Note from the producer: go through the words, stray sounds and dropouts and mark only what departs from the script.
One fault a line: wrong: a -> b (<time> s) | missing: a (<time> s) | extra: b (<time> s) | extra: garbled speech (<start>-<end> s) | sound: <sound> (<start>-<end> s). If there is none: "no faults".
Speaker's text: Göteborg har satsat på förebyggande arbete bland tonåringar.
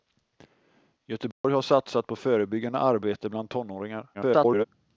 sound: dropout (1.3-1.4 s)
extra: garbled speech (4.1-4.6 s)